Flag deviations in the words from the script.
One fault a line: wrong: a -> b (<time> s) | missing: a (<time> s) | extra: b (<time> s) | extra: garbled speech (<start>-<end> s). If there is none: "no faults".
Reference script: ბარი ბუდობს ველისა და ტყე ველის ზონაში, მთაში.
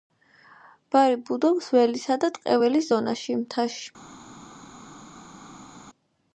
no faults